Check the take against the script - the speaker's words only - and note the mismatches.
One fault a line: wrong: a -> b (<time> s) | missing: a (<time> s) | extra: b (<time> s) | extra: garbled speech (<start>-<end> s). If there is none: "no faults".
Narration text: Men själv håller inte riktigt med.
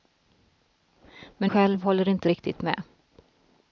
no faults